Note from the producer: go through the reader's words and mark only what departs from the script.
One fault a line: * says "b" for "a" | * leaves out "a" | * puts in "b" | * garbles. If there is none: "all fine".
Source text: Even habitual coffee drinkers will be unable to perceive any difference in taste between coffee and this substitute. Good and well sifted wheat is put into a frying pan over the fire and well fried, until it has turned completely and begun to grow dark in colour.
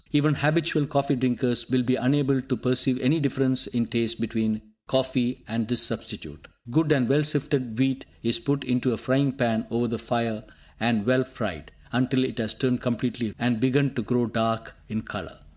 all fine